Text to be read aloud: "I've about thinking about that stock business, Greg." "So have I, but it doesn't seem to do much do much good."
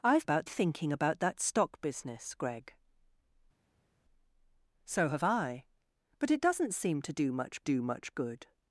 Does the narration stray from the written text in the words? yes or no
no